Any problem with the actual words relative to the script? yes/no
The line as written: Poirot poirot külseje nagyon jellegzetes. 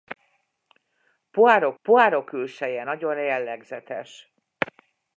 no